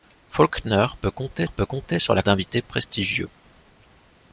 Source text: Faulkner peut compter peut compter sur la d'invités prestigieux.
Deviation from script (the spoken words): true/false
false